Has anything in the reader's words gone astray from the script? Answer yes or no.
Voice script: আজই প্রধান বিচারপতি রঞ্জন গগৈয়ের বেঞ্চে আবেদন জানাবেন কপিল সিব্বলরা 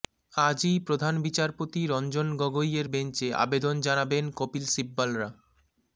no